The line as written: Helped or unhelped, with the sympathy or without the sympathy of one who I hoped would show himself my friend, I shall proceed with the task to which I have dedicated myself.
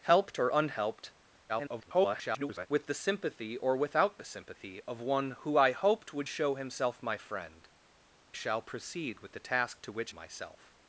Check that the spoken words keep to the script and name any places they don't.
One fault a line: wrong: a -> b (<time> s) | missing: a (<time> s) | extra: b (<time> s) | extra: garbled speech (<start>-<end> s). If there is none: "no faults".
extra: garbled speech (1.5-2.7 s)
missing: I (7.7 s)
missing: I have dedicated (10.1 s)